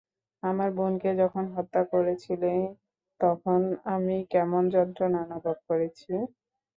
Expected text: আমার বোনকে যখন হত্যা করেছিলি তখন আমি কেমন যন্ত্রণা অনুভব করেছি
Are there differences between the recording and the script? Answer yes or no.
no